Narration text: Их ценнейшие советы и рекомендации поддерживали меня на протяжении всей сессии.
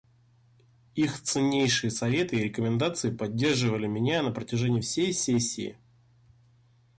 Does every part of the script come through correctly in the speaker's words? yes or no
yes